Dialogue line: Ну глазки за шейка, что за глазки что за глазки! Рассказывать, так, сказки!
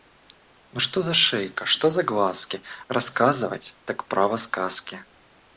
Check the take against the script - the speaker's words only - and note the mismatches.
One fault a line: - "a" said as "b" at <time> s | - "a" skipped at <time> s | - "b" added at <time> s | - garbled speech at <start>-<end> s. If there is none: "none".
- "глазки" said as "что" at 0.8 s
- "что за глазки" skipped at 2.6 s
- "право" added at 4.1 s